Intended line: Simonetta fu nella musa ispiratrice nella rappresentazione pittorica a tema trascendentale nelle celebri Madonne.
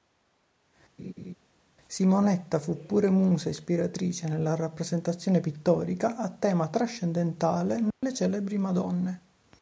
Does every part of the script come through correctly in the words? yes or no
no